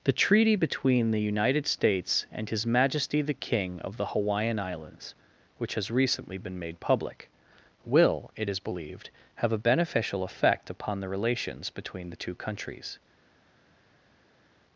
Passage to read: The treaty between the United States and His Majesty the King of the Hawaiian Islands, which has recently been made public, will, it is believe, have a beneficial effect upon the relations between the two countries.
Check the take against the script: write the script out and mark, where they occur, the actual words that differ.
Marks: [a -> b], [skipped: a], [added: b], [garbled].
The treaty between the United States and His Majesty the King of the Hawaiian Islands, which has recently been made public, will, it is [believe, -> believed] have a beneficial effect upon the relations between the two countries.